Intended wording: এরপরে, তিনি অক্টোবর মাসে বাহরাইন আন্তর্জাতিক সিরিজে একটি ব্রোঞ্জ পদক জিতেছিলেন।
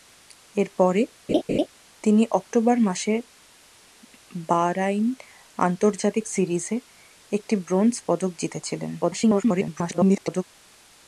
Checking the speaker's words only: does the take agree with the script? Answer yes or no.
no